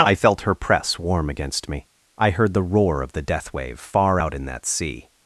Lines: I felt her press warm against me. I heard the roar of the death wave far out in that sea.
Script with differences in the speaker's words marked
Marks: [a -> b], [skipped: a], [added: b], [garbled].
I felt her press warm against me. I heard the roar of the death wave far out in that sea.